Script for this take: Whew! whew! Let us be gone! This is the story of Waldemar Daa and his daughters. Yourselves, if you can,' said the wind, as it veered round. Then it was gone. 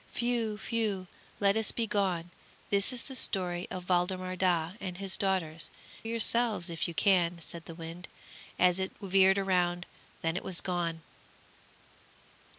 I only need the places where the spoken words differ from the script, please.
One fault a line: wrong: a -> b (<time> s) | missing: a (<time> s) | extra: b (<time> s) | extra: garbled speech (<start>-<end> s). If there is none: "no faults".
no faults